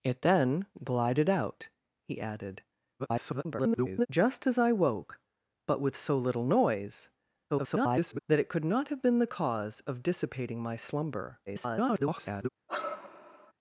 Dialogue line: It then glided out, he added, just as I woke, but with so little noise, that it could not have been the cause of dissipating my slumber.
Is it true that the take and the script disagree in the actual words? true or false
true